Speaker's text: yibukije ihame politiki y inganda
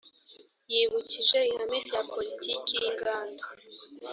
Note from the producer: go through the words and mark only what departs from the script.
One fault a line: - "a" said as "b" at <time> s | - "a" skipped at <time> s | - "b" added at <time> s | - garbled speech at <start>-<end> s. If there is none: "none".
- "rya" added at 1.9 s